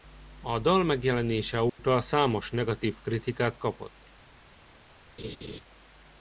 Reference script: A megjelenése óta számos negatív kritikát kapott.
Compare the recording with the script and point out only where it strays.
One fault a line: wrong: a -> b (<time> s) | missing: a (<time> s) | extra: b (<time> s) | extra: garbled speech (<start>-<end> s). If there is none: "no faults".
extra: dal (0.6 s)